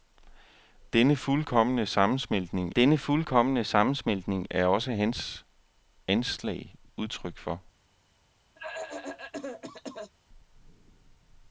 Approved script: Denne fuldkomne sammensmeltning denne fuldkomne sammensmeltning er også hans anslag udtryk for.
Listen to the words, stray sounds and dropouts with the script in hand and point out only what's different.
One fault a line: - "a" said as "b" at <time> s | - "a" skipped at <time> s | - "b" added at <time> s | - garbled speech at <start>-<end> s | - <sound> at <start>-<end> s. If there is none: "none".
- cough at 8.6-10.1 s